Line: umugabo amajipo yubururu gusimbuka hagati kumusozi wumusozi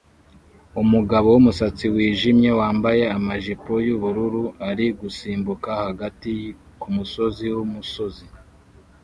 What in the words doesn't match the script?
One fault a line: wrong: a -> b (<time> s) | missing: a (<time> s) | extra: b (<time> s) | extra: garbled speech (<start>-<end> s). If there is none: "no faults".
extra: wumusatsi wijimye wambaye (1.3 s)
extra: ari (4.7 s)